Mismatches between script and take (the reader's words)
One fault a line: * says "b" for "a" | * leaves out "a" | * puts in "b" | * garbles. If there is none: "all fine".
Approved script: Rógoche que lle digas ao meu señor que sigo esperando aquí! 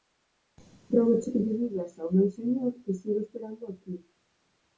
all fine